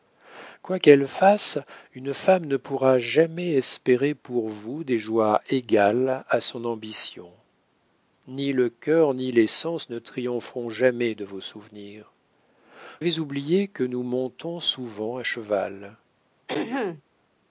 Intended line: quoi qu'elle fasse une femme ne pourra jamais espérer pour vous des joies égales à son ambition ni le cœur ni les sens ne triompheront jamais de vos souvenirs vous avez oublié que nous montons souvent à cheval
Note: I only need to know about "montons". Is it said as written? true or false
true